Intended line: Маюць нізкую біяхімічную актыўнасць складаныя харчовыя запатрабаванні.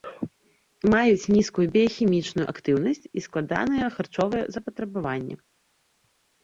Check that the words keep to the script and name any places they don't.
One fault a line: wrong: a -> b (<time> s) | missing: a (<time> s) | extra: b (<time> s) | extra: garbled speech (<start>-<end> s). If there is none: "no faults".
extra: і (3.2 s)